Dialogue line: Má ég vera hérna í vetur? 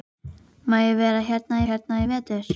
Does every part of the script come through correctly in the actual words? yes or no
no